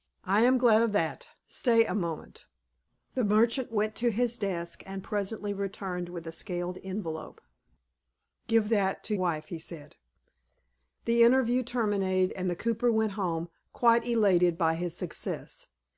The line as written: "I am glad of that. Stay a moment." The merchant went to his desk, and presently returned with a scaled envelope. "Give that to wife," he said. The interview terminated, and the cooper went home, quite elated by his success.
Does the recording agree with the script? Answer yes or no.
yes